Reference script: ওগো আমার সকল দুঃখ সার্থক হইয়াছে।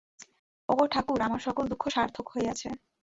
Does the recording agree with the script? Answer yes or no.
no